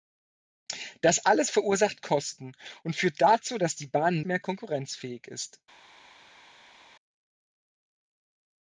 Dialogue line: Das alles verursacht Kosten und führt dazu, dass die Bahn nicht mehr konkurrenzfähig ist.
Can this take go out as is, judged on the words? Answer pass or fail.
fail